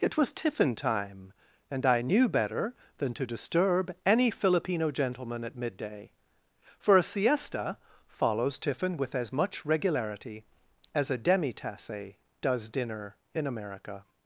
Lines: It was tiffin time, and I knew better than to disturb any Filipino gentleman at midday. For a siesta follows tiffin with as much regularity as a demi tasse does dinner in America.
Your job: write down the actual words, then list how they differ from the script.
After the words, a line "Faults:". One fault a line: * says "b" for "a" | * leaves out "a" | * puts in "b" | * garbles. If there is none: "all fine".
It was tiffin time, and I knew better than to disturb any Filipino gentleman at midday. For a siesta follows tiffin with as much regularity as a demi tasse does dinner in America.
Faults:
all fine